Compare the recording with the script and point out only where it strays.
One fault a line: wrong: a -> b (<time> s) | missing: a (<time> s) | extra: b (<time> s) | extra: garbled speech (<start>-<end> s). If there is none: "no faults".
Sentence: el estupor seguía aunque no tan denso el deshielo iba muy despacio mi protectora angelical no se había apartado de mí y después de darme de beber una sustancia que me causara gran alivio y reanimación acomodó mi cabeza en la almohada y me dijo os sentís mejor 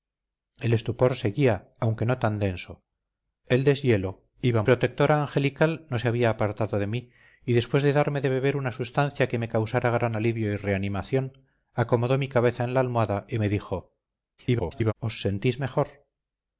missing: muy despacio mi (4.6 s)
extra: garbled speech (14.4-14.9 s)